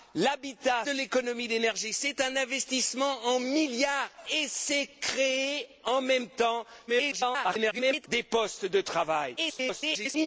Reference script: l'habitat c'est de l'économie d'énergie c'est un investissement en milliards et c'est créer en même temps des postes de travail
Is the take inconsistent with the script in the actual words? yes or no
yes